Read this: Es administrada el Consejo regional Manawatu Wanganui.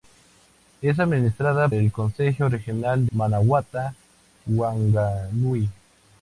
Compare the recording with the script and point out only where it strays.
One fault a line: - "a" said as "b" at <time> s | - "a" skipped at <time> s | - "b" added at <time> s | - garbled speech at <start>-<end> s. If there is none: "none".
none